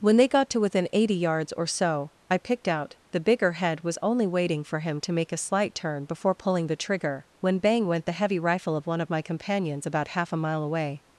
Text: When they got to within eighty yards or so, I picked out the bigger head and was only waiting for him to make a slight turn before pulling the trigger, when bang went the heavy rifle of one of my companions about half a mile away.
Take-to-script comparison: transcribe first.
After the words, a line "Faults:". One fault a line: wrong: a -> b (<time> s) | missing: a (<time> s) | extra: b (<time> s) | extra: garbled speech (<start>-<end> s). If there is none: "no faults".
When they got to within eighty yards or so, I picked out the bigger head was only waiting for him to make a slight turn before pulling the trigger, when bang went the heavy rifle of one of my companions about half a mile away.
Faults:
missing: and (3.8 s)